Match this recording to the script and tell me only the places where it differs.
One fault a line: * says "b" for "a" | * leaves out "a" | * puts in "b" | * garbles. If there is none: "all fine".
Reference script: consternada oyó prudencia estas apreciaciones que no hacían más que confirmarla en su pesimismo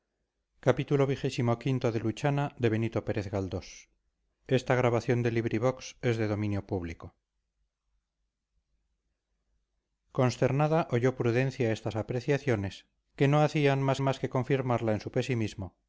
* puts in "más"